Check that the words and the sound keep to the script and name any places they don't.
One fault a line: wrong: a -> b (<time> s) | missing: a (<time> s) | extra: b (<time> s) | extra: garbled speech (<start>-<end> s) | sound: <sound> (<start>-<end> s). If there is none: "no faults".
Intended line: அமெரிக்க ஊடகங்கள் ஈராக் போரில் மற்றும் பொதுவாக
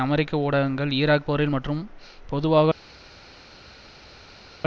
no faults